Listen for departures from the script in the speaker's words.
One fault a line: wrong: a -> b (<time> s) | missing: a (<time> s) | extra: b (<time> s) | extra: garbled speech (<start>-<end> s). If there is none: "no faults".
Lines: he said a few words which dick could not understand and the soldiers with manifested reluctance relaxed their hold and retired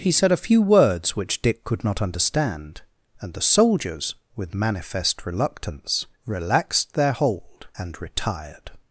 wrong: manifested -> manifest (4.5 s)